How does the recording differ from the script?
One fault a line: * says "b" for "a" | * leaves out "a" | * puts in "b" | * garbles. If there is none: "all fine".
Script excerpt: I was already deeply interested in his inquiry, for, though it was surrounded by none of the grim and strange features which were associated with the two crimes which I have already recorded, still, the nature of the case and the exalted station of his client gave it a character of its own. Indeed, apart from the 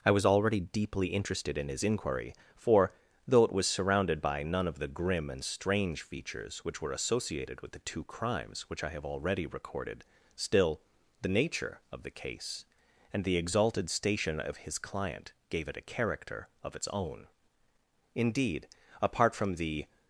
all fine